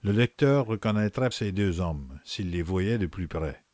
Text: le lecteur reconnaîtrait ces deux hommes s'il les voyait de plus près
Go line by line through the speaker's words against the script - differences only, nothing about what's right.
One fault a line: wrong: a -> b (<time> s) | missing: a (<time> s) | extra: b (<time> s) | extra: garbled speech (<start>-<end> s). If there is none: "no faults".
no faults